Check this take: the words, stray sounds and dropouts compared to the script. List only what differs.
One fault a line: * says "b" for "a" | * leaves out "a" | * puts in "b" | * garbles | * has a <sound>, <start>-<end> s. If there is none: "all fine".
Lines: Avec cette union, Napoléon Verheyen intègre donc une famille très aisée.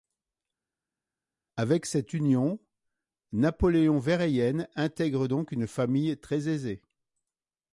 all fine